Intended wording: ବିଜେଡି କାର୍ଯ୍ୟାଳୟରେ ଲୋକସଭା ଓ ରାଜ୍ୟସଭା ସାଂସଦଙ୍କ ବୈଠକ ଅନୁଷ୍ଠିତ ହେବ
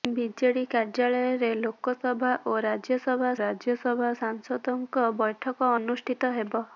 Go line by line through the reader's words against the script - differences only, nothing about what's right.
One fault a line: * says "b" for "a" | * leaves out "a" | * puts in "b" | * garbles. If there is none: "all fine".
* puts in "ରାଜ୍ୟସଭା"